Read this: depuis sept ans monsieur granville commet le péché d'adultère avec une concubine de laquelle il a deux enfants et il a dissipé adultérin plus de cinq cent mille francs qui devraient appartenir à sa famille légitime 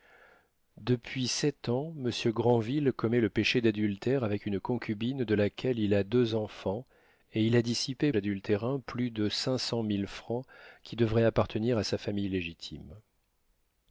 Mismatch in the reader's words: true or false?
false